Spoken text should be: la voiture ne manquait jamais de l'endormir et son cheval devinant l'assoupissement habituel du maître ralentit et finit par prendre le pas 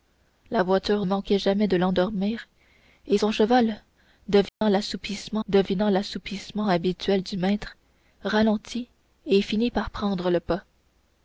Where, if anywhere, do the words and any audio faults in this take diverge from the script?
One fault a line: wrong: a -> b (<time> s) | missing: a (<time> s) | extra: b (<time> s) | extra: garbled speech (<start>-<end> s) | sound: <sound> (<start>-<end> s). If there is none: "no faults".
missing: ne (1.1 s)
sound: dropout (4.5-4.6 s)
extra: devinant l'assoupissement (5.5 s)